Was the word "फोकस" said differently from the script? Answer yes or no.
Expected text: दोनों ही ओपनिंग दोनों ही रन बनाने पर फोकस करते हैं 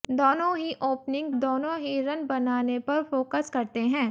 no